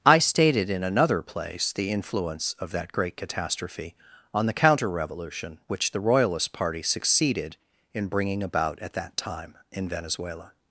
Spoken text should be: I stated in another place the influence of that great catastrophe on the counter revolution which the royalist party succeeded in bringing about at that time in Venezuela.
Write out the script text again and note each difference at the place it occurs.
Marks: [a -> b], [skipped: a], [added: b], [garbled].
I stated in another place the influence of that great catastrophe on the counter revolution which the royalist party succeeded in bringing about at that time in Venezuela.